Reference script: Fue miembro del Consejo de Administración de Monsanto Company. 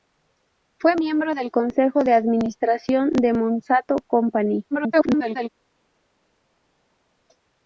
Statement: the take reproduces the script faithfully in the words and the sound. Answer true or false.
false